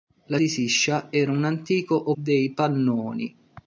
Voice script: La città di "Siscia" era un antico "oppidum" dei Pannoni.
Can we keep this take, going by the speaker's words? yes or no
no